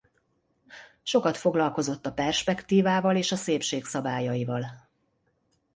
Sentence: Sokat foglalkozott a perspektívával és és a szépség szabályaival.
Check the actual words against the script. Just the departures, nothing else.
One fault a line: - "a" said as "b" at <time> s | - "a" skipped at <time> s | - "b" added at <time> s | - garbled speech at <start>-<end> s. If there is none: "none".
- "és" skipped at 3.3 s